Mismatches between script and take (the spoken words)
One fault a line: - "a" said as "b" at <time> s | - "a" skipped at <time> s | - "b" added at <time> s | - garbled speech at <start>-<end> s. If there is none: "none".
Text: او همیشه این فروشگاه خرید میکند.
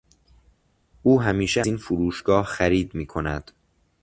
none